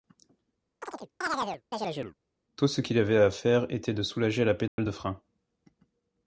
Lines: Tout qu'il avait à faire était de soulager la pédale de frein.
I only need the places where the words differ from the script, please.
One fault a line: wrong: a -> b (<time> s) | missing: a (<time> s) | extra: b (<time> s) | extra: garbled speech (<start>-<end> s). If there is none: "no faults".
extra: ce (2.7 s)